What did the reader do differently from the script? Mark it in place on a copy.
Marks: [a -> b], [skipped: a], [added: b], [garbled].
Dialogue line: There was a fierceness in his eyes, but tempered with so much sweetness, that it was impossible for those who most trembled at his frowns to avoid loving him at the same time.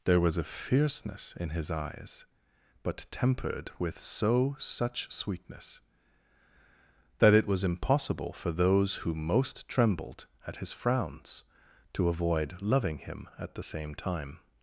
There was a fierceness in his eyes, but tempered with so [much -> such] sweetness, that it was impossible for those who most trembled at his frowns to avoid loving him at the same time.